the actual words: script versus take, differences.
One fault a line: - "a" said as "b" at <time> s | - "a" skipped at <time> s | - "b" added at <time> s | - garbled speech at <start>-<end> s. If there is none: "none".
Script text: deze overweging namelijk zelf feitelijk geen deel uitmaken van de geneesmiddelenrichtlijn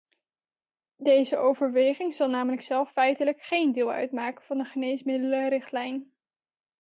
- "zal" added at 2.1 s